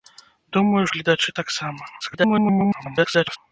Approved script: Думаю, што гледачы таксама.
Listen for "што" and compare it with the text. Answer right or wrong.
wrong